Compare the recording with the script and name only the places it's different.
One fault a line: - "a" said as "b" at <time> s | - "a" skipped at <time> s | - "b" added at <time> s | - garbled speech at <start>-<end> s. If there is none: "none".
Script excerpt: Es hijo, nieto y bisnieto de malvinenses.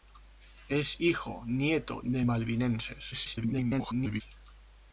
- "y bisnieto" skipped at 2.0 s
- garbled speech at 3.1-4.2 s